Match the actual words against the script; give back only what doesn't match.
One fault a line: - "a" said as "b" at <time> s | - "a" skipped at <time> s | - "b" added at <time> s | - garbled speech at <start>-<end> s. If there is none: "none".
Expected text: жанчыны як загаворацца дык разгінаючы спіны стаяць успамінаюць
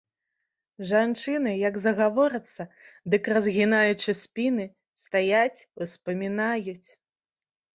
none